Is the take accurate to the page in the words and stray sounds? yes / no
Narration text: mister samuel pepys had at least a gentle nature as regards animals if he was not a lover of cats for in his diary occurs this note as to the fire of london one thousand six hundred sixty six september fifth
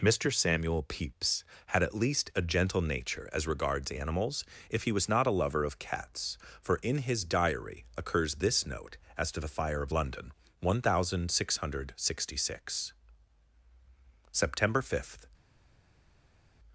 yes